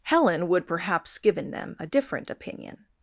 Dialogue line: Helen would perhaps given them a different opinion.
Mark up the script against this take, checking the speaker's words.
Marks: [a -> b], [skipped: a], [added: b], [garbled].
Helen would perhaps given them a different opinion.